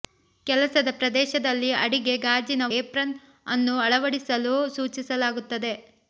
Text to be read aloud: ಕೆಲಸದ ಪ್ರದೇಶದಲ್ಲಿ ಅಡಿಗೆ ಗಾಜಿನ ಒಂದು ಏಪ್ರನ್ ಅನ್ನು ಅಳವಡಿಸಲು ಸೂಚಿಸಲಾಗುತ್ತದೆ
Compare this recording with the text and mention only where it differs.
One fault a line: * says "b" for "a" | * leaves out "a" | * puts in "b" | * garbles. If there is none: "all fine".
* leaves out "ಒಂದು"